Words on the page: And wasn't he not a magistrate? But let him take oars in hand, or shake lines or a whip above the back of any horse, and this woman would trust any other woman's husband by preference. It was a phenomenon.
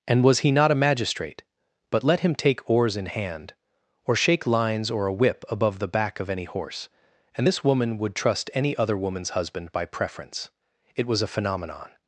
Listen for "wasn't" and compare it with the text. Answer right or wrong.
wrong